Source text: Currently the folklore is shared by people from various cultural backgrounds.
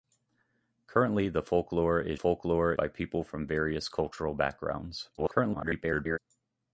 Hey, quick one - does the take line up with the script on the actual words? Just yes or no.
no